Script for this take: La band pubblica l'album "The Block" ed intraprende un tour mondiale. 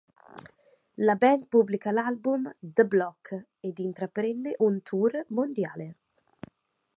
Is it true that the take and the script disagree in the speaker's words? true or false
false